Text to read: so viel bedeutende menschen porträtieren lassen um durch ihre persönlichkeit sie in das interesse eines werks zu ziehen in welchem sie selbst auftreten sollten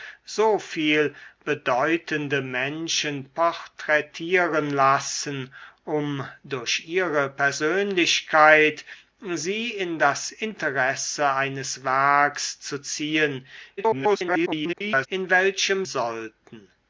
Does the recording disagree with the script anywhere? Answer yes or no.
yes